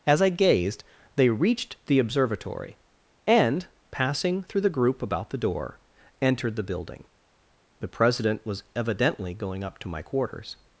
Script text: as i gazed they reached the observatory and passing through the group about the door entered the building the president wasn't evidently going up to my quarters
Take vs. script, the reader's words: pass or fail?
fail